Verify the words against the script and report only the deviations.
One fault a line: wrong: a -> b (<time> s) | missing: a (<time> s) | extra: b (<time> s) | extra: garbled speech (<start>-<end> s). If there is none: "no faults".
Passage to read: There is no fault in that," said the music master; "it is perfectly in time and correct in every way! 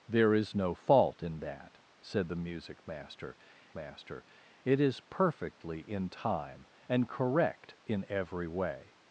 extra: master (3.8 s)